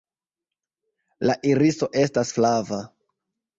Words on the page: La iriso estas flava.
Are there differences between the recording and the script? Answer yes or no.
no